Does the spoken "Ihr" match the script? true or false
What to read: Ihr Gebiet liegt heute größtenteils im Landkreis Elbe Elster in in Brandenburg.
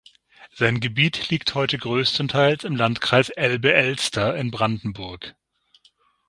false